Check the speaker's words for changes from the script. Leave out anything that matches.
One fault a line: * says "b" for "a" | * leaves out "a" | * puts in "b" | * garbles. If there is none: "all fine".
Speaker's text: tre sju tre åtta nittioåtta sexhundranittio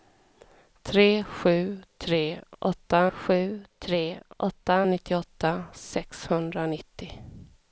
* puts in "sju tre åtta"